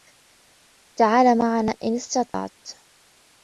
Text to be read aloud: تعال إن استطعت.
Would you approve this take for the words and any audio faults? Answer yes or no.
no